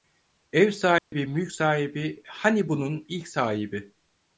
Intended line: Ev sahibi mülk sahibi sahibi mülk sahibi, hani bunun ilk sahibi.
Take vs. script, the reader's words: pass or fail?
fail